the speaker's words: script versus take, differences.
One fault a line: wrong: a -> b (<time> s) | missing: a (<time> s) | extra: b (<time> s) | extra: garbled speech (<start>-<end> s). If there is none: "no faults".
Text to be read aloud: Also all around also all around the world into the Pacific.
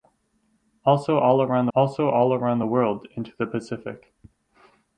no faults